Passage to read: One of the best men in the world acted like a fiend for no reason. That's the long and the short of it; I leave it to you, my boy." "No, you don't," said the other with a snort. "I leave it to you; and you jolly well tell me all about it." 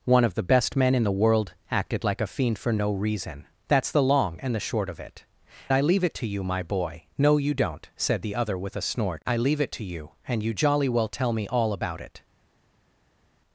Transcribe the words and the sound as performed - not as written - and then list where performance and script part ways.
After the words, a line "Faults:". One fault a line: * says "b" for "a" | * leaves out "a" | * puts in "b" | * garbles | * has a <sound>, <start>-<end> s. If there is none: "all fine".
One of the best men in the world acted like a fiend for no reason. That's the long and the short of it; I leave it to you, my boy." "No, you don't," said the other with a snort. "I leave it to you; and you jolly well tell me all about it."
Faults:
all fine